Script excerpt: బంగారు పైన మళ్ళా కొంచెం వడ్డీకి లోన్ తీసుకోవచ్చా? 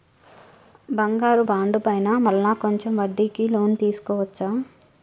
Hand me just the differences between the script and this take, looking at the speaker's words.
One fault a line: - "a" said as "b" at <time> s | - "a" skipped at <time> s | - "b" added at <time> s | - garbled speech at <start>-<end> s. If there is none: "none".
- "బాండు" added at 1.4 s